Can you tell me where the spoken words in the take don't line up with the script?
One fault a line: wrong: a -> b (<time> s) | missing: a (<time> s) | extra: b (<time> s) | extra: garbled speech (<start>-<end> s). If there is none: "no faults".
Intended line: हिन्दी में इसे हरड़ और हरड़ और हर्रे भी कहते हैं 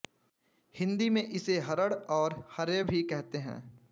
missing: हरड़ और (2.4 s)